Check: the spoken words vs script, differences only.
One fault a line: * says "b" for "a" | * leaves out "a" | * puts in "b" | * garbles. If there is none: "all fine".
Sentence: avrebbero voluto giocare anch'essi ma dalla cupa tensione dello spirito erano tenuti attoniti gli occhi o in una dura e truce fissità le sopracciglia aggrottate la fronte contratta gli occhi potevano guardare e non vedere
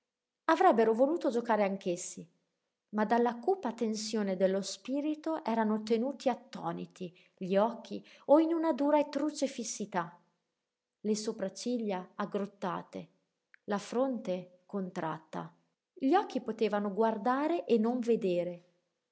all fine